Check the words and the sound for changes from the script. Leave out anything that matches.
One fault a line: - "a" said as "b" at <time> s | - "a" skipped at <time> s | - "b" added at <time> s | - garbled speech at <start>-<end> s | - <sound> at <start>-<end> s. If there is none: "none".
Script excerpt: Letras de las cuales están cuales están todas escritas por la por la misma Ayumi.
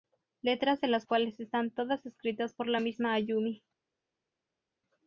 - "cuales están" skipped at 1.7 s
- "por la" skipped at 2.8 s